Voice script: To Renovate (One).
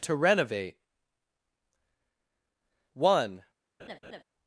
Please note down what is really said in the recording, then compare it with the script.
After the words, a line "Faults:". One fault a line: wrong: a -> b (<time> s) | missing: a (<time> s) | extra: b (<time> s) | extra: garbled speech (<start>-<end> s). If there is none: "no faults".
To Renovate (One).
Faults:
no faults